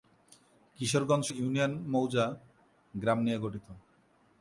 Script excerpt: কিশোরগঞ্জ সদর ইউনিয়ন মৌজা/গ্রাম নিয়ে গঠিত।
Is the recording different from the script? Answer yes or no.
yes